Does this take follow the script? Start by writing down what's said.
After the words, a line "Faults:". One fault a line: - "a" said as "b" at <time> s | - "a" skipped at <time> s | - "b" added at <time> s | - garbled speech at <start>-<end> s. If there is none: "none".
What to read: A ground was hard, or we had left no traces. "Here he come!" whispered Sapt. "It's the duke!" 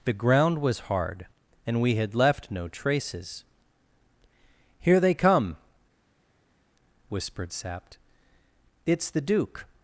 The ground was hard, and we had left no traces. "Here they come!" whispered Sapt. "It's the duke!"
Faults:
- "A" said as "The" at 0.0 s
- "or" said as "and" at 1.7 s
- "he" said as "they" at 5.0 s